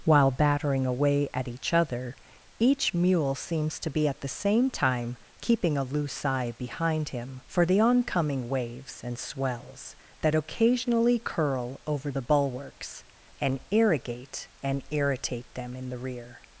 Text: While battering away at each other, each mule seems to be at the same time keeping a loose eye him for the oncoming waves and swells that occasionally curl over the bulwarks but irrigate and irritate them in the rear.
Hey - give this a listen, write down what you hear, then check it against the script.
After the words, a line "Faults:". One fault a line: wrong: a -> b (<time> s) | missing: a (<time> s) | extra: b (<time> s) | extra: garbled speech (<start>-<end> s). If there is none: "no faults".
While battering away at each other, each mule seems to be at the same time keeping a loose eye behind him for the oncoming waves and swells that occasionally curl over the bulwarks and irrigate and irritate them in the rear.
Faults:
extra: behind (6.6 s)
wrong: but -> and (13.4 s)